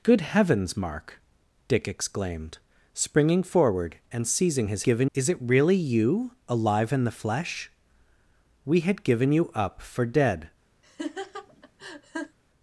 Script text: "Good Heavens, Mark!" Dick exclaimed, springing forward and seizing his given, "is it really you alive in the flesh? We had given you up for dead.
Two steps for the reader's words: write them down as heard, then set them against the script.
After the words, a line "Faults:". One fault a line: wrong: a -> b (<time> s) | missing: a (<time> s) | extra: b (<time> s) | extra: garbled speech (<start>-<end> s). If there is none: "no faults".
"Good Heavens, Mark!" Dick exclaimed, springing forward and seizing his given, "is it really you alive in the flesh? We had given you up for dead.
Faults:
no faults